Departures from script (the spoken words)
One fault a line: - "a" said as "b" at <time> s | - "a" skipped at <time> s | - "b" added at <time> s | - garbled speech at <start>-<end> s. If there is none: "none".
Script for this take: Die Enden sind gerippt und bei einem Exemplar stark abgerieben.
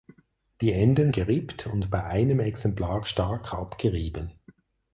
- "sind" skipped at 1.1 s